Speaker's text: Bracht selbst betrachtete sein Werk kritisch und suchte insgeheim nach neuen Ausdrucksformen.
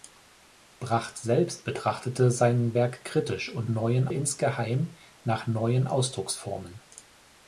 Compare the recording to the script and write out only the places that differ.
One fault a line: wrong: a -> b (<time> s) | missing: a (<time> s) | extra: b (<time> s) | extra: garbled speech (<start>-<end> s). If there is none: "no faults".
wrong: suchte -> neuen (3.7 s)